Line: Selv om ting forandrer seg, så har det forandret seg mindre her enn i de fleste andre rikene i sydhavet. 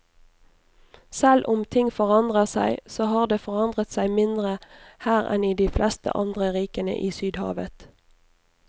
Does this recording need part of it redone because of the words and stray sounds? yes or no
no